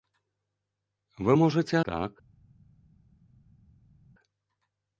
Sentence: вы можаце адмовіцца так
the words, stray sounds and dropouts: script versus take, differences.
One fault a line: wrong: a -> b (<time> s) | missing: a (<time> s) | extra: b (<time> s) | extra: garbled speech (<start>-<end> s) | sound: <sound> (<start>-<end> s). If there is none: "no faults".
missing: адмовіцца (1.8 s)